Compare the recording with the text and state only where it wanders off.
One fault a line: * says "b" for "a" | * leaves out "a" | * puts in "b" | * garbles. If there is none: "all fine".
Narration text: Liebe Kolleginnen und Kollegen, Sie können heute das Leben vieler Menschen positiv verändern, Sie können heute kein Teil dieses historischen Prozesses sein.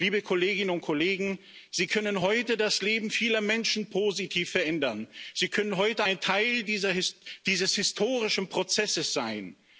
* says "ein" for "kein"